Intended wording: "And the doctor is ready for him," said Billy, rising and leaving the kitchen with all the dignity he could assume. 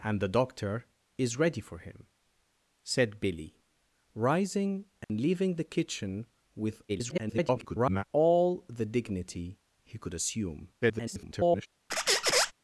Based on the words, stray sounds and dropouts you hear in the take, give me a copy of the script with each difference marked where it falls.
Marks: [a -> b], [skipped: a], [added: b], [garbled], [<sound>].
"And the doctor is ready for him," said Billy, rising and [dropout] leaving the kitchen with [garbled] all the dignity he could assume. [garbled] [squeak]